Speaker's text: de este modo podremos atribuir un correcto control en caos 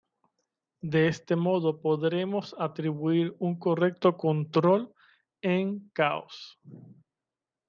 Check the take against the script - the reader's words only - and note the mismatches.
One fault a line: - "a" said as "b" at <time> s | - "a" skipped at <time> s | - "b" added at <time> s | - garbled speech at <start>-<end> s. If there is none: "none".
none